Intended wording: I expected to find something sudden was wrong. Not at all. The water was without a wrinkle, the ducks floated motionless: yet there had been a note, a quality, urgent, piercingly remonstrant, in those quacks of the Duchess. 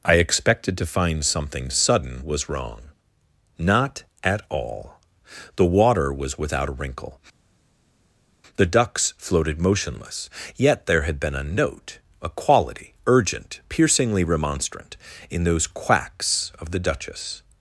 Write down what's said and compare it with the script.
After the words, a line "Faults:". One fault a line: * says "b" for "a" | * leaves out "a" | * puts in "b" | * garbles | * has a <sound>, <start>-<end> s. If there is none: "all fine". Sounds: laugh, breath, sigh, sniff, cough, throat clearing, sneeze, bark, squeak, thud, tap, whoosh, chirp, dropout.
I expected to find something sudden was wrong. Not at all. The water was without a wrinkle, the ducks floated motionless: yet there had been a note, a quality, urgent, piercingly remonstrant, in those quacks of the Duchess.
Faults:
all fine